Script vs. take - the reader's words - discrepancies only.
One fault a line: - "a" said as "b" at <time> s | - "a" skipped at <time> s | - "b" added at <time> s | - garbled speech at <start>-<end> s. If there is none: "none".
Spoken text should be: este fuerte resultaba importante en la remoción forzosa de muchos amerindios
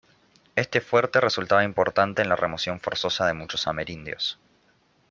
none